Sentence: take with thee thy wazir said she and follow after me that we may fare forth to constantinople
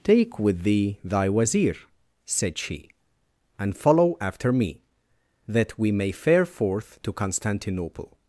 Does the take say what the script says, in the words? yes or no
yes